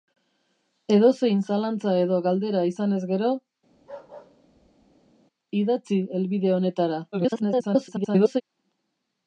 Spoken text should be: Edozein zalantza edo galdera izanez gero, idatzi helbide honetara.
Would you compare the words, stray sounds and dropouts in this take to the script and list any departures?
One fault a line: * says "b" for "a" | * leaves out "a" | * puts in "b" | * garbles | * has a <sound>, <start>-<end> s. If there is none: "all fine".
* has a bark, 3.7-5.1 s
* garbles